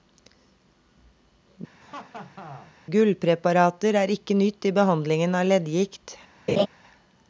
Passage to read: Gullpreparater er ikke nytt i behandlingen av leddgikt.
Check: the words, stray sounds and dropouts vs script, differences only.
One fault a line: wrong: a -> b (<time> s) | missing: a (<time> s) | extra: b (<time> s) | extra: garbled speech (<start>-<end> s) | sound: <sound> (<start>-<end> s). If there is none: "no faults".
sound: laugh (1.8-2.7 s)
sound: laugh (6.5-6.7 s)